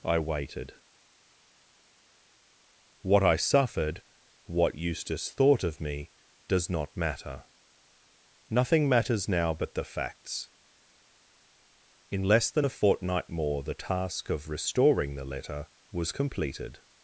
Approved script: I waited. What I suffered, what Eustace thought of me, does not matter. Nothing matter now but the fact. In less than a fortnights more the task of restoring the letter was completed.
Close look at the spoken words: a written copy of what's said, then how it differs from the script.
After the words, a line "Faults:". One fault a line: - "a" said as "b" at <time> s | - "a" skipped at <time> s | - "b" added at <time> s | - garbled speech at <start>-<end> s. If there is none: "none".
I waited. What I suffered, what Eustace thought of me, does not matter. Nothing matters now but the facts. In less than a fortnight more the task of restoring the letter was completed.
Faults:
- "matter" said as "matters" at 8.9 s
- "fact" said as "facts" at 9.8 s
- "fortnights" said as "fortnight" at 12.7 s